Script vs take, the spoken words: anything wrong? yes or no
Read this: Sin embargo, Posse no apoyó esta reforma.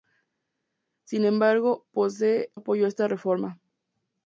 yes